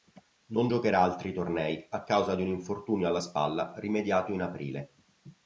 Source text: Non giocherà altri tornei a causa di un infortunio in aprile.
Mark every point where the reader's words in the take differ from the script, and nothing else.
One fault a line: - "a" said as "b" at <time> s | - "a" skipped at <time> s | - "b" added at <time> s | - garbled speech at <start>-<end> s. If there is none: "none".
- "alla spalla rimediato" added at 3.1 s